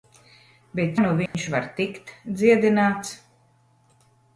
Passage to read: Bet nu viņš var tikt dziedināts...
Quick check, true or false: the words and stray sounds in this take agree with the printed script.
false